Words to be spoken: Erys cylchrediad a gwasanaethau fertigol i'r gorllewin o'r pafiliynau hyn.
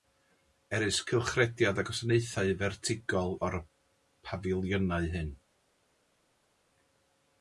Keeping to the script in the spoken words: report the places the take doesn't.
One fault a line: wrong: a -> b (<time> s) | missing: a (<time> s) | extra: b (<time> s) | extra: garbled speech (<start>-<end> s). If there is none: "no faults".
missing: i'r gorllewin (3.4 s)